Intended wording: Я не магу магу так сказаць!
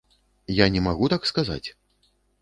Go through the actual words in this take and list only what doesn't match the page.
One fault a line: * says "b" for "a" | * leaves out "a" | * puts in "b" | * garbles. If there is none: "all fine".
* leaves out "магу"